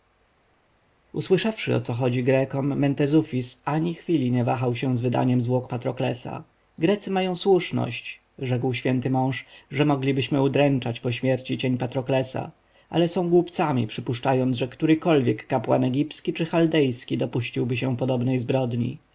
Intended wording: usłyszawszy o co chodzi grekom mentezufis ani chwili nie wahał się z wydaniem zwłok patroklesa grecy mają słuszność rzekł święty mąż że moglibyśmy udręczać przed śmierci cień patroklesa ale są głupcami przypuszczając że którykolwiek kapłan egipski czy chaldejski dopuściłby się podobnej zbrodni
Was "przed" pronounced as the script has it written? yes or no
no